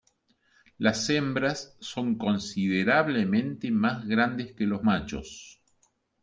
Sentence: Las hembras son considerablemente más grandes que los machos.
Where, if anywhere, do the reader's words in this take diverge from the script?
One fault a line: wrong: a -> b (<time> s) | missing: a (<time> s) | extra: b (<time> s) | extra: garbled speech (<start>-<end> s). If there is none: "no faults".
no faults